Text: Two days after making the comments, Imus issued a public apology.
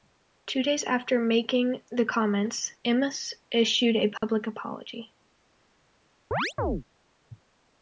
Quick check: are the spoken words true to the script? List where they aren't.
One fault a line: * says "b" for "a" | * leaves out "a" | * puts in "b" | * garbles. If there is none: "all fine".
all fine